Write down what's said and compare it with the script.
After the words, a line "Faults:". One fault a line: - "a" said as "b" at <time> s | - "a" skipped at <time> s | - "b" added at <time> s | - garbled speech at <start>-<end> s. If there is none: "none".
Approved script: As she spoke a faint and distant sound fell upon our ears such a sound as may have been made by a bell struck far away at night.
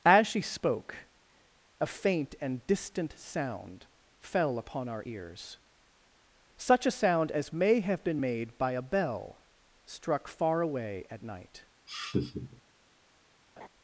As she spoke a faint and distant sound fell upon our ears such a sound as may have been made by a bell struck far away at night.
Faults:
none